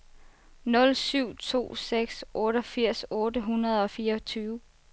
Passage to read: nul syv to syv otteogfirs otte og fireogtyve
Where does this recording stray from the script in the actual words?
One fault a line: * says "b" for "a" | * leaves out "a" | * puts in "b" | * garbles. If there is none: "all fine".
* says "seks" for "syv"
* puts in "hundrede"